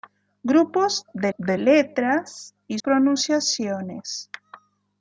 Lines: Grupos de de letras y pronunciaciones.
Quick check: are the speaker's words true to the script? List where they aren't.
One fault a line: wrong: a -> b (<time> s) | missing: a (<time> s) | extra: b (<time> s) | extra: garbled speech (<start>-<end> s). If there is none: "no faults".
no faults